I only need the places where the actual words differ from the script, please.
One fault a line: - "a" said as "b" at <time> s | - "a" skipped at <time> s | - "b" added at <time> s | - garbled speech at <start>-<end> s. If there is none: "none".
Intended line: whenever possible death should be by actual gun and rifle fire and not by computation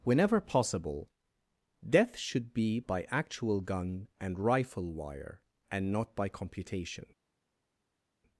- "fire" said as "wire" at 4.9 s